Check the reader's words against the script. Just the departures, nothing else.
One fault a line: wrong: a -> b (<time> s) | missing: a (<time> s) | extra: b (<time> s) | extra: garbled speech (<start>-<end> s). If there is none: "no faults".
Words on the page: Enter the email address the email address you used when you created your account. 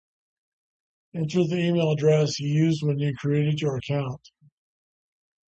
missing: the email address (2.4 s)